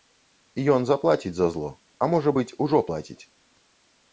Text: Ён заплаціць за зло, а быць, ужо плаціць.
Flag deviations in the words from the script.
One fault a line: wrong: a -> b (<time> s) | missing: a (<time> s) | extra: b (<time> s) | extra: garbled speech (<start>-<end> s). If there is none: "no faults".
extra: можа (2.1 s)